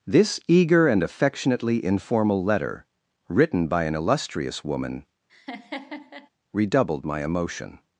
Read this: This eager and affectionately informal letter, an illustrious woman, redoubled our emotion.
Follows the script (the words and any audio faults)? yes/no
no